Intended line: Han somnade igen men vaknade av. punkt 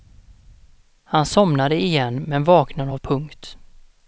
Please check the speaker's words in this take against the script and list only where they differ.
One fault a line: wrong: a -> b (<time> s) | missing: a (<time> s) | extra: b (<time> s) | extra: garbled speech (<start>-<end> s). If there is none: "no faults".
no faults